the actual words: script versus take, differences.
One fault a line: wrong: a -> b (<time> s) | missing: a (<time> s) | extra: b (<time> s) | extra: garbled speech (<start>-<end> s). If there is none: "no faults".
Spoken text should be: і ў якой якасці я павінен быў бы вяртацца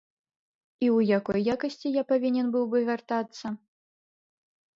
no faults